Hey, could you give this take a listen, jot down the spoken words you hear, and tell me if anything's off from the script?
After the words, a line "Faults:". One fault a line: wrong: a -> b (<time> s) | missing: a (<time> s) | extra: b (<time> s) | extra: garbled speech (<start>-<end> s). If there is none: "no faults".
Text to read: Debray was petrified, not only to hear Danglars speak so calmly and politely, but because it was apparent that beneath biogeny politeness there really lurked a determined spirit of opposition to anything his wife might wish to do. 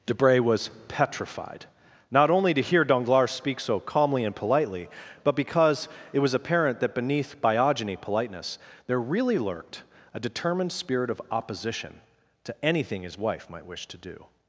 Debray was petrified, not only to hear Danglars speak so calmly and politely, but because it was apparent that beneath biogeny politeness there really lurked a determined spirit of opposition to anything his wife might wish to do.
Faults:
no faults